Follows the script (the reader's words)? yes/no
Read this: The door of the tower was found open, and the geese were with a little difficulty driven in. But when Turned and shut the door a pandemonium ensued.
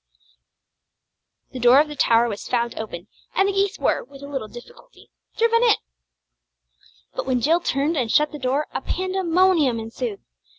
no